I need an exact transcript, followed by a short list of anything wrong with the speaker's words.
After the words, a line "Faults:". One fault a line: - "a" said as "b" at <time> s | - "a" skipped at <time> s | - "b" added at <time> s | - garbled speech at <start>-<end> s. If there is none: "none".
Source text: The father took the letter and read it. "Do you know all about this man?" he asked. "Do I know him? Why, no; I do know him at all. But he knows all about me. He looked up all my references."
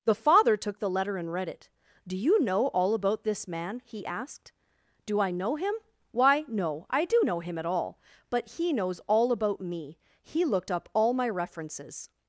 The father took the letter and read it. "Do you know all about this man?" he asked. "Do I know him? Why, no; I do know him at all. But he knows all about me. He looked up all my references."
Faults:
none